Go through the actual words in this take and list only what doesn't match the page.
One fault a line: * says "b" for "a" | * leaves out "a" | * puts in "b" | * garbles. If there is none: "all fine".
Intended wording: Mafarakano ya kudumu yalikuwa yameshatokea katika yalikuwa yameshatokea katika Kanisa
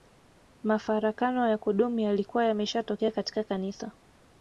* leaves out "yalikuwa yameshatokea katika"